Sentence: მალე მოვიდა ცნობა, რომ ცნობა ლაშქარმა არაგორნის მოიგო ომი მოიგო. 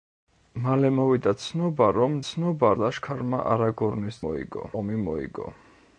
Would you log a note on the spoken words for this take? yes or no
no